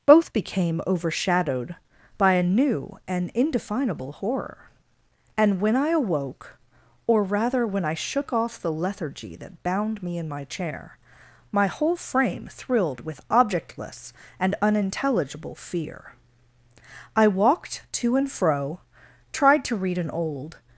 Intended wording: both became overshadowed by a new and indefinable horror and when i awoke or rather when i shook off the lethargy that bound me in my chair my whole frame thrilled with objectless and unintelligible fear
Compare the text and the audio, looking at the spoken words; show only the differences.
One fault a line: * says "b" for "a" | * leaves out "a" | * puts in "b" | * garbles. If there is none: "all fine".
* puts in "i walked to and fro tried to read an old"